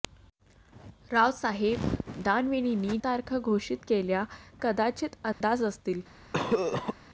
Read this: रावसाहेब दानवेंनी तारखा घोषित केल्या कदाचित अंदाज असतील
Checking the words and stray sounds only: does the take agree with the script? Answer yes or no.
no